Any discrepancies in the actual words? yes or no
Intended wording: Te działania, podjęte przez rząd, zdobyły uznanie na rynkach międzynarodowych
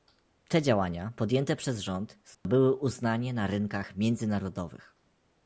no